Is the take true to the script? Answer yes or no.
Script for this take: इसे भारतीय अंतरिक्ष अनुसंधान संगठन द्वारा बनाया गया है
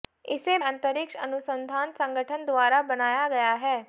no